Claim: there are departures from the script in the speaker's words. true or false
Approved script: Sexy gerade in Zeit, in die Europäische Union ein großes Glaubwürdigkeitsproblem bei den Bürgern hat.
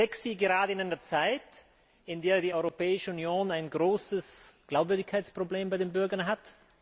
true